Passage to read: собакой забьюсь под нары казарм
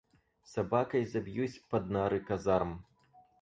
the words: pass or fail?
pass